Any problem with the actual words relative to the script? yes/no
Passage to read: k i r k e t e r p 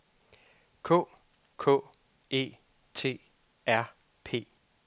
yes